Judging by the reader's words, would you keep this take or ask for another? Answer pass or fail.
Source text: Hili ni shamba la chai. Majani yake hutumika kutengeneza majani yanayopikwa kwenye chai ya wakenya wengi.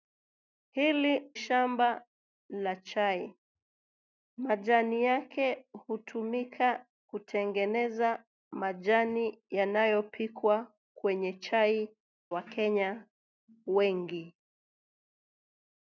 fail